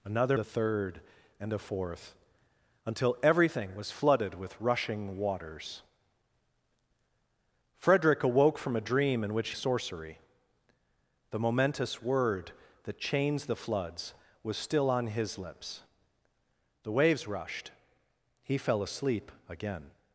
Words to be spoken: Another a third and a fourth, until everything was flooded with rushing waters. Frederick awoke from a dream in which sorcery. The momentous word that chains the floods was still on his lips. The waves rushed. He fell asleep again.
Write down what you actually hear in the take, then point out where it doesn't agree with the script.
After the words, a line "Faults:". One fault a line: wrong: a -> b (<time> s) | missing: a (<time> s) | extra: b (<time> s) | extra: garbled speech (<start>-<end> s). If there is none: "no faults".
Another a third and a fourth, until everything was flooded with rushing waters. Frederick awoke from a dream in which sorcery. The momentous word that chains the floods was still on his lips. The waves rushed. He fell asleep again.
Faults:
no faults